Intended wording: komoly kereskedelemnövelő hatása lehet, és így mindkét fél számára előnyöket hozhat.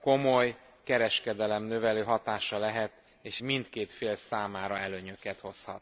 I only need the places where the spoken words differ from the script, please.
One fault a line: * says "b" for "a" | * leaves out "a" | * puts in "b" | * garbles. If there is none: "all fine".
* leaves out "így"